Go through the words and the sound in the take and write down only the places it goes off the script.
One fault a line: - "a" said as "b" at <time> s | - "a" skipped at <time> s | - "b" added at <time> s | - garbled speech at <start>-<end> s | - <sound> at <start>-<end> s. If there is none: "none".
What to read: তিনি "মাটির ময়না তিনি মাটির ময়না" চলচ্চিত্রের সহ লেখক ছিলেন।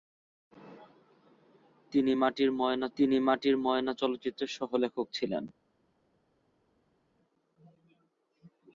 none